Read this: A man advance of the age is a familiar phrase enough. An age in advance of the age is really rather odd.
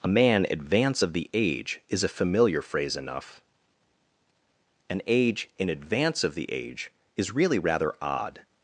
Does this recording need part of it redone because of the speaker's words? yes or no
no